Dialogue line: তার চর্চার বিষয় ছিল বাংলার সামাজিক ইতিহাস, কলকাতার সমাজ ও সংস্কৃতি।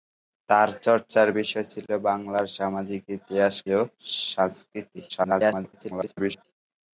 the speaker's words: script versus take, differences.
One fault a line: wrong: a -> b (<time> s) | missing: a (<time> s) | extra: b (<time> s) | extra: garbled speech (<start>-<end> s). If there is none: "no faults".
missing: কলকাতার সমাজ (3.5 s)
extra: garbled speech (5.1-6.5 s)